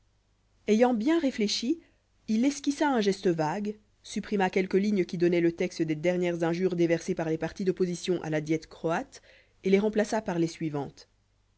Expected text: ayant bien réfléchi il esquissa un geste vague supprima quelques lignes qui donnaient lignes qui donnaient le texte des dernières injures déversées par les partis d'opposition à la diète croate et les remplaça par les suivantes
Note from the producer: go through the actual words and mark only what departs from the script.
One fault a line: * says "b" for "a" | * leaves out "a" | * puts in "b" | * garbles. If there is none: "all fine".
* leaves out "lignes qui donnaient"